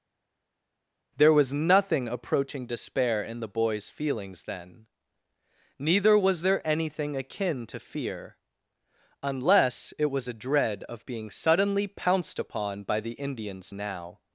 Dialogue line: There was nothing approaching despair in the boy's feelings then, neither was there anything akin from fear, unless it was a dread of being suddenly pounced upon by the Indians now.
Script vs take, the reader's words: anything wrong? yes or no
yes